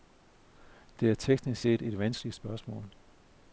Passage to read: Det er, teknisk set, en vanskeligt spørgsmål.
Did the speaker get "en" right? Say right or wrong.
wrong